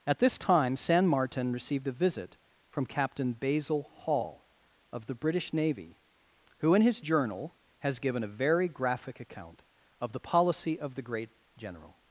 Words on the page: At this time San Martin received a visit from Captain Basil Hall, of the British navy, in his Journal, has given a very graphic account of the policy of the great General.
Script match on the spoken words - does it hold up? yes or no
no